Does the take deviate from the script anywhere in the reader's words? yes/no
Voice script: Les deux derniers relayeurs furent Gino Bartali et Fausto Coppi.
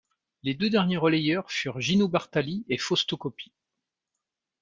no